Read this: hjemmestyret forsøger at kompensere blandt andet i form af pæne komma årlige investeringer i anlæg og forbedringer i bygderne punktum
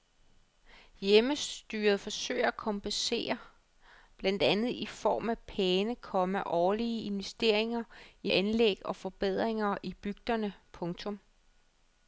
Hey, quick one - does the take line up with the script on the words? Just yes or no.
yes